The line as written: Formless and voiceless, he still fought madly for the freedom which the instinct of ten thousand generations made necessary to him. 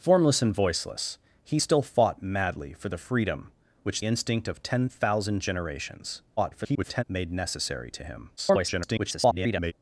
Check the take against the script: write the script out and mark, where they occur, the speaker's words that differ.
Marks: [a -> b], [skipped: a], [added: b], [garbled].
Formless and voiceless, he still fought madly for the freedom which [skipped: the] instinct of ten thousand generations [garbled] made necessary to him. [garbled]